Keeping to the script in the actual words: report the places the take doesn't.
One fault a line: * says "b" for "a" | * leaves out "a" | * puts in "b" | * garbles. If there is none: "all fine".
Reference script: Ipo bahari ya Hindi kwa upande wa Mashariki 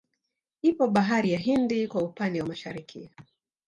all fine